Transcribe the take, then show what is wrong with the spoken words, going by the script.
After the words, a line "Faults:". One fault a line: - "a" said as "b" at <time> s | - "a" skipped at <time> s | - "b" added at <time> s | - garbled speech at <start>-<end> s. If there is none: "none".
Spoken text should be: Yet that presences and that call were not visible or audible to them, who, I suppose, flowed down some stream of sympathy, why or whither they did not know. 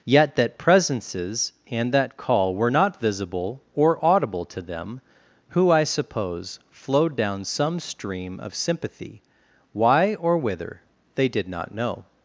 Yet that presences and that call were not visible or audible to them, who, I suppose, flowed down some stream of sympathy, why or whither they did not know.
Faults:
none